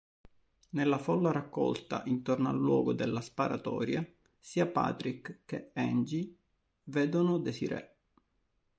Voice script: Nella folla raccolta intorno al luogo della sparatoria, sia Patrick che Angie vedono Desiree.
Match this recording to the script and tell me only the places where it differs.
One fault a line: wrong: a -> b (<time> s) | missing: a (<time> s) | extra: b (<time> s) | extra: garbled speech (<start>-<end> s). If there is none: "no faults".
no faults